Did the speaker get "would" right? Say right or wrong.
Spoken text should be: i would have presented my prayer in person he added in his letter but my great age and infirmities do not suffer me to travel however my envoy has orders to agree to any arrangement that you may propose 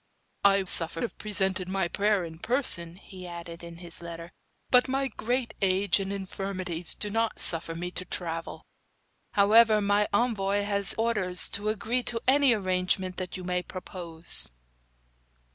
wrong